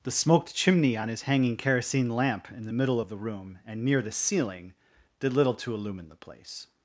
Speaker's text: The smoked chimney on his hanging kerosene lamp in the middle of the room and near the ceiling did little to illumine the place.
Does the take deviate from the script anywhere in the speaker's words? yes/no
no